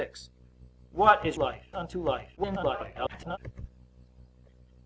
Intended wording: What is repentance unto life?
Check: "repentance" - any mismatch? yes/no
yes